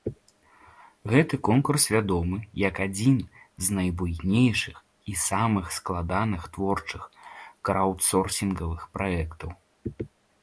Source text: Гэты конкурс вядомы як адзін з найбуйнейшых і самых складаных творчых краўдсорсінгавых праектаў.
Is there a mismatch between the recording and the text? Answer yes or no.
no